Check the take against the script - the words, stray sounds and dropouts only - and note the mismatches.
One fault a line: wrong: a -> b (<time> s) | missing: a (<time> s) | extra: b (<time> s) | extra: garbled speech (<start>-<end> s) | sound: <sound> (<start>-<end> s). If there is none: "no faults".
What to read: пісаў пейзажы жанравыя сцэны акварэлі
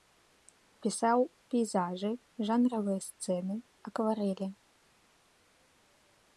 no faults